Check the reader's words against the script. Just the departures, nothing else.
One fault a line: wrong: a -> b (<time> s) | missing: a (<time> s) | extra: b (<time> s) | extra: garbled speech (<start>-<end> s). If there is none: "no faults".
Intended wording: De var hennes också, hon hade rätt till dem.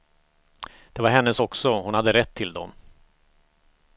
no faults